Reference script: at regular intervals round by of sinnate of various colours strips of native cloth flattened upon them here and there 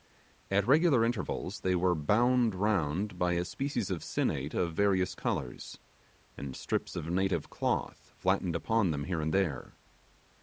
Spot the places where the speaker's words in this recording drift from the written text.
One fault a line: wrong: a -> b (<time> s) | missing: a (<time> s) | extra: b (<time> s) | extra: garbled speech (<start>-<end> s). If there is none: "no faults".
extra: they were bound (1.6 s)
extra: a species (3.3 s)
extra: and (6.3 s)